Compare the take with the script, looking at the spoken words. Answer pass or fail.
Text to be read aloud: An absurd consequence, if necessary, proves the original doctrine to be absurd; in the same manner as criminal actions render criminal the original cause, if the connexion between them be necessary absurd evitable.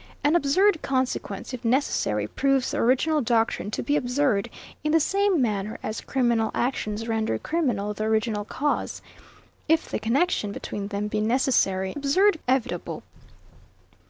pass